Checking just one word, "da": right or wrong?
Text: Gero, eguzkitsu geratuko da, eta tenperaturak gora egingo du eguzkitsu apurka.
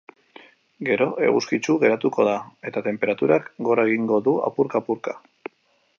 right